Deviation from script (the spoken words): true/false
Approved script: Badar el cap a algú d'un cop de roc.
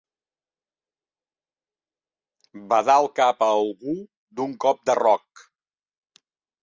false